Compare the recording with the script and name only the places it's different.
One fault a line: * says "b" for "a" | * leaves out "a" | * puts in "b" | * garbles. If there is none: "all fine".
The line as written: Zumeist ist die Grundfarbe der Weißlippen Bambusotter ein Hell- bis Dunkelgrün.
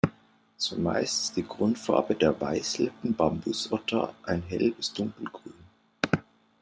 all fine